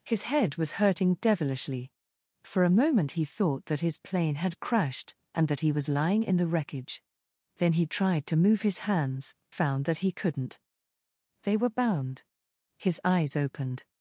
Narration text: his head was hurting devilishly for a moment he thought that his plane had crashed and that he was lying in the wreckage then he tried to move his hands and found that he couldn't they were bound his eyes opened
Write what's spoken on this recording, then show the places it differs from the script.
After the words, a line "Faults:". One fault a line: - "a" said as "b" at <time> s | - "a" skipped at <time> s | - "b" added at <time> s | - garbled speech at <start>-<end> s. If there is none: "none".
his head was hurting devilishly for a moment he thought that his plane had crashed and that he was lying in the wreckage then he tried to move his hands found that he couldn't they were bound his eyes opened
Faults:
- "and" skipped at 9.3 s